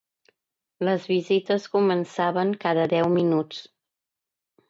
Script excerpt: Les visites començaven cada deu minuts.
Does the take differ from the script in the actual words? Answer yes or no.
no